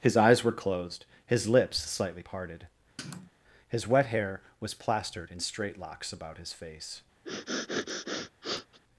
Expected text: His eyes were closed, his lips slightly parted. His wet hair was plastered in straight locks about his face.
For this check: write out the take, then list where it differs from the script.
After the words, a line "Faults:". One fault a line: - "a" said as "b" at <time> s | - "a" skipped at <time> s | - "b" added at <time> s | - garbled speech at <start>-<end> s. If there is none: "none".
His eyes were closed, his lips slightly parted. His wet hair was plastered in straight locks about his face.
Faults:
none